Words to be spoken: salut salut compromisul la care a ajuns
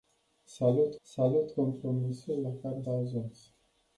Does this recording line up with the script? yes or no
yes